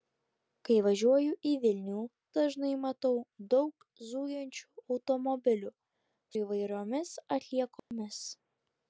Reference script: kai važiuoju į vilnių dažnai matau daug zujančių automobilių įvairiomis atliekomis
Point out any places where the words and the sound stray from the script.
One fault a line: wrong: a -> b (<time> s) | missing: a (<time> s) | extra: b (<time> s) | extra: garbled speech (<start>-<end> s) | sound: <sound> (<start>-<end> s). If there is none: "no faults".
sound: dropout (7.8-7.9 s)